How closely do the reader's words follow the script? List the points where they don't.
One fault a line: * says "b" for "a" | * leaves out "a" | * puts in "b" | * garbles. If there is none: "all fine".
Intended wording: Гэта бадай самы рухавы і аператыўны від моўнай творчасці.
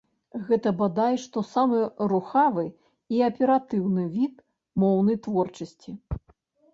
* puts in "што"